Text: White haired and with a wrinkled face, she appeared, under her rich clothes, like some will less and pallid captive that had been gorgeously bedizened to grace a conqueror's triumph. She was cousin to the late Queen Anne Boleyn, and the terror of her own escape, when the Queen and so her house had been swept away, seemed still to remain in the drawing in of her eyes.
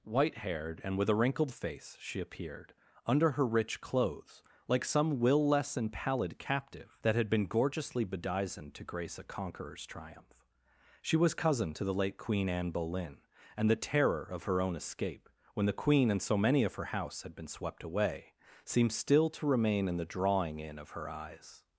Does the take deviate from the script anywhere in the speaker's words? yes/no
yes